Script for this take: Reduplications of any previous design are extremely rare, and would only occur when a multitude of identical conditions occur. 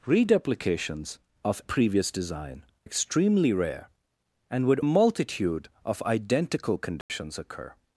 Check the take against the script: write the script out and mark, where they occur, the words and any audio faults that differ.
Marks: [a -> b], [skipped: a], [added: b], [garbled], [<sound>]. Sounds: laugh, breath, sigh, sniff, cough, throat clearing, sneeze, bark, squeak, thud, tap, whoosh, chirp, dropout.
Reduplications of [skipped: any] previous design [skipped: are] extremely rare, and would [skipped: only occur when] a multitude of identical conditions [dropout] occur.